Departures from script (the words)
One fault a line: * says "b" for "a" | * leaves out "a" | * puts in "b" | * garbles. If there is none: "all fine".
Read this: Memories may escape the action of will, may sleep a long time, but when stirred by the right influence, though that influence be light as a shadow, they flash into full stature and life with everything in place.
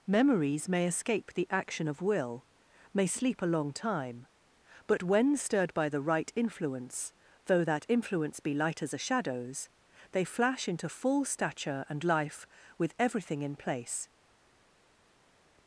* says "shadows" for "shadow"